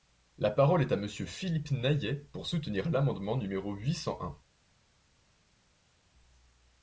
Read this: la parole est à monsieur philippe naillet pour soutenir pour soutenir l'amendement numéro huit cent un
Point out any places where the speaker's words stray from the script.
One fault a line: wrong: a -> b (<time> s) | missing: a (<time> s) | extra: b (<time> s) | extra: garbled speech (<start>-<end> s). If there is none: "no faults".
missing: pour soutenir (2.9 s)